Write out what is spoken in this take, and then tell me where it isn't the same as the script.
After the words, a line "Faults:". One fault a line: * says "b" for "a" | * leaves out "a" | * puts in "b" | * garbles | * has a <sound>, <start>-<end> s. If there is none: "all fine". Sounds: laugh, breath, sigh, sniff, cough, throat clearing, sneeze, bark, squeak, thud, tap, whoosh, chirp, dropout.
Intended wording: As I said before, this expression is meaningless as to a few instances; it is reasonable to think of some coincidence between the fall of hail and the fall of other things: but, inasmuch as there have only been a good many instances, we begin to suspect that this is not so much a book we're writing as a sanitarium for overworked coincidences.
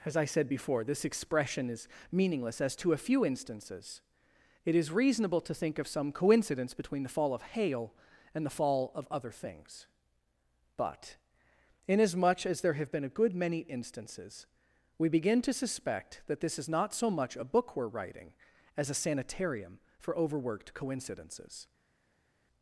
As I said before, this expression is meaningless as to a few instances; it is reasonable to think of some coincidence between the fall of hail and the fall of other things: but, inasmuch as there have been a good many instances, we begin to suspect that this is not so much a book we're writing as a sanitarium for overworked coincidences.
Faults:
* leaves out "only"